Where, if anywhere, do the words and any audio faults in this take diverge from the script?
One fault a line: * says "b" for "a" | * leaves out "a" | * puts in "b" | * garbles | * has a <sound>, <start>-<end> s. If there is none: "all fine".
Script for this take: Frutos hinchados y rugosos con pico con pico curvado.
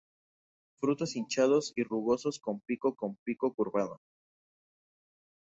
all fine